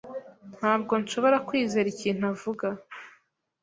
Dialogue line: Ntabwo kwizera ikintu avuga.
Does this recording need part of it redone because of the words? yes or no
yes